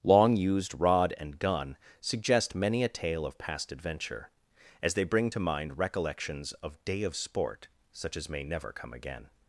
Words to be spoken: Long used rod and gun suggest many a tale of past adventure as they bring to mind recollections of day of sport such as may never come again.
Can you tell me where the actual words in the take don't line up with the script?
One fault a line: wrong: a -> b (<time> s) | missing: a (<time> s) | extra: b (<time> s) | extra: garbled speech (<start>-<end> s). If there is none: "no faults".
no faults